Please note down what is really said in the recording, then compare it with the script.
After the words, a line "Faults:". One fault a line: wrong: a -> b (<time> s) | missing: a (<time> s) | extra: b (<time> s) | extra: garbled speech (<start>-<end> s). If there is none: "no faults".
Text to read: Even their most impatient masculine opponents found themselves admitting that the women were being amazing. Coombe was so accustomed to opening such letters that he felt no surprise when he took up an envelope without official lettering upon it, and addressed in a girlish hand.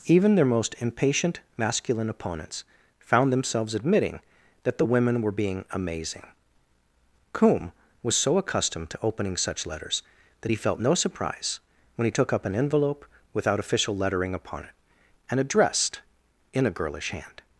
Even their most impatient masculine opponents found themselves admitting that the women were being amazing. Coombe was so accustomed to opening such letters that he felt no surprise when he took up an envelope without official lettering upon it, and addressed in a girlish hand.
Faults:
no faults